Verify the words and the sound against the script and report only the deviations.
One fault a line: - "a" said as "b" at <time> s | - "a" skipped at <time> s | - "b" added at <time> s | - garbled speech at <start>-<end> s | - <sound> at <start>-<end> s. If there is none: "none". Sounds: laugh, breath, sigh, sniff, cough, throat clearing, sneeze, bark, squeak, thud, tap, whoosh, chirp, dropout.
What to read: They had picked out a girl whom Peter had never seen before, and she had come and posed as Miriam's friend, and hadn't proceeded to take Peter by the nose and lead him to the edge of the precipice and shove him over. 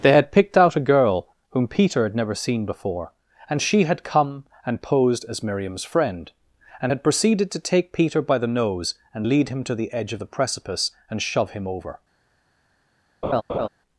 - "hadn't" said as "had" at 6.9 s
- laugh at 13.2-13.7 s